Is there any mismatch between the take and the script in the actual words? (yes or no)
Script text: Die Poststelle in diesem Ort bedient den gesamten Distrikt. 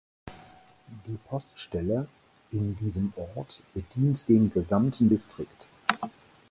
no